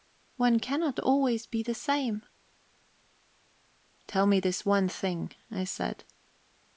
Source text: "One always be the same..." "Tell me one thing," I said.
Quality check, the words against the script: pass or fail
fail